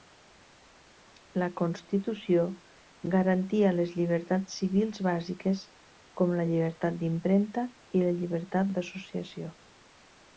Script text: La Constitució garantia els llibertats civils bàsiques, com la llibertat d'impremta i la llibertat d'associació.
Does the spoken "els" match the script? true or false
false